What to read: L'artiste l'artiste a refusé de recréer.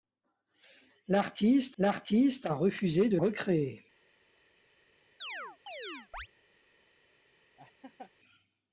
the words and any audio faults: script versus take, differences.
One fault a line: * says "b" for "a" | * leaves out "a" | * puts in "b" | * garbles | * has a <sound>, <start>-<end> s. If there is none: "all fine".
* has a chirp, 5.2-6.3 s
* has a laugh, 7.6-8.1 s